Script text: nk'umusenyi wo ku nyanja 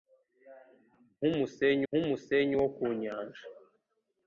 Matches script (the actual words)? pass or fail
fail